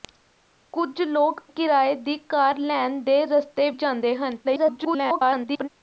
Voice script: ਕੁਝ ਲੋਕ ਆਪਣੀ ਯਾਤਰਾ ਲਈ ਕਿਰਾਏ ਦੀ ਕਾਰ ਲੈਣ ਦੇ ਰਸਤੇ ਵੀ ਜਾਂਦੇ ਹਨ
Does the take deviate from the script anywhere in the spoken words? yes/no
yes